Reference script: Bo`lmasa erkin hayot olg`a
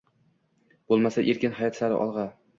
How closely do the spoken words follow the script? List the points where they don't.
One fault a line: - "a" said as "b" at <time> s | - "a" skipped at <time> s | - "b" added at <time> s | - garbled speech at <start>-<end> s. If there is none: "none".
- "sari" added at 1.8 s